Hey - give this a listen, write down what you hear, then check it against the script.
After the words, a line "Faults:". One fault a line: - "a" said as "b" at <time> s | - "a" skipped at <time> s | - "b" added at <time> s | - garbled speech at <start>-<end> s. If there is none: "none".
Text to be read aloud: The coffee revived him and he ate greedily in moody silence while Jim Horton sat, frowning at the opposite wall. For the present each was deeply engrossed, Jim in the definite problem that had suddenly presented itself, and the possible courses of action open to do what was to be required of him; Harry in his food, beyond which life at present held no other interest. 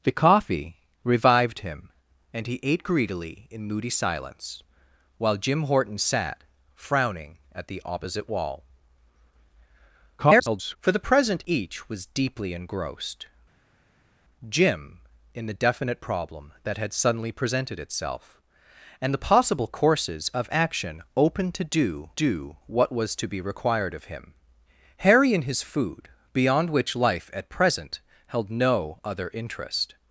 The coffee revived him and he ate greedily in moody silence while Jim Horton sat, frowning at the opposite wall. [garbled] For the present each was deeply engrossed, Jim in the definite problem that had suddenly presented itself, and the possible courses of action open to do do what was to be required of him; Harry in his food, beyond which life at present held no other interest.
Faults:
- garbled speech at 10.2-10.8 s
- "do" added at 22.1 s